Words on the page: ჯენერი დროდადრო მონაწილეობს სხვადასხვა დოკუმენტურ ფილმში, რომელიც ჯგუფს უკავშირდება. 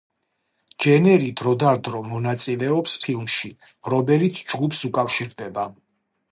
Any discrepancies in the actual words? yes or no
yes